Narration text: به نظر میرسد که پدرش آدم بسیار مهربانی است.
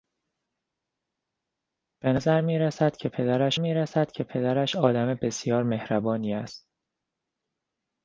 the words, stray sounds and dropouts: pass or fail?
fail